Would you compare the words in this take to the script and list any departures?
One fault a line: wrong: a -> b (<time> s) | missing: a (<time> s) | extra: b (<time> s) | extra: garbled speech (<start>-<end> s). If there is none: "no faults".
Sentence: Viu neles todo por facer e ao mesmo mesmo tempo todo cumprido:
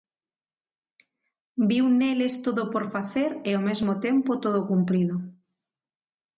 missing: mesmo (3.9 s)